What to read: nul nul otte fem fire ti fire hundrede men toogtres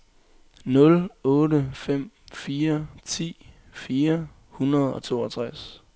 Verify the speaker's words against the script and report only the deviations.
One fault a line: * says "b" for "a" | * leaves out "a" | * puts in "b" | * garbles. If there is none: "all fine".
* leaves out "nul"
* says "og" for "men"